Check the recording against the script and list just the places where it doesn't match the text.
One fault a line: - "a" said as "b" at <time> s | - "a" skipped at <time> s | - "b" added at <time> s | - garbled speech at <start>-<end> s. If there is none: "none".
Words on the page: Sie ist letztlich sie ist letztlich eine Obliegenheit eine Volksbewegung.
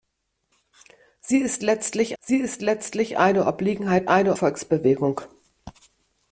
none